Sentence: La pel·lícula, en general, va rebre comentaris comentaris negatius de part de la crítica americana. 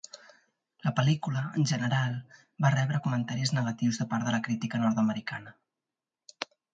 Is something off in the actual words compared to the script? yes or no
yes